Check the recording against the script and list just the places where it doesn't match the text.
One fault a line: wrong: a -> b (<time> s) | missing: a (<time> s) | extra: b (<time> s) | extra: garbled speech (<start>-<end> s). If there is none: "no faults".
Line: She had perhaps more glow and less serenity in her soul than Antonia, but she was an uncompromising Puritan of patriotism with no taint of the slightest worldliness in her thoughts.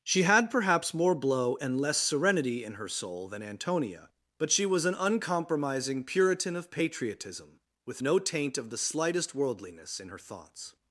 wrong: glow -> blow (1.1 s)